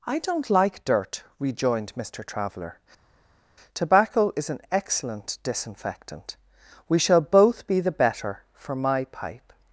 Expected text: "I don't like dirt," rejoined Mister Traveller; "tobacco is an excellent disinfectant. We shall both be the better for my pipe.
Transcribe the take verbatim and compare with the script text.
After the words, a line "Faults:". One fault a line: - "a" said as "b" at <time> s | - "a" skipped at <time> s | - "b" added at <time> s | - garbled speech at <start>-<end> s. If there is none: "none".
"I don't like dirt," rejoined Mister Traveller; "tobacco is an excellent disinfectant. We shall both be the better for my pipe.
Faults:
none